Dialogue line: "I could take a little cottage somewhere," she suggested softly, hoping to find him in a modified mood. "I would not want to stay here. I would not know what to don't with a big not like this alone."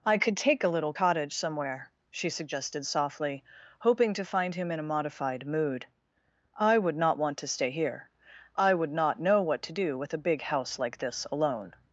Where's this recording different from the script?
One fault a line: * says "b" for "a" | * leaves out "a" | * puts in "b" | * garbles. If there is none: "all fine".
* says "do" for "don't"
* says "house" for "not"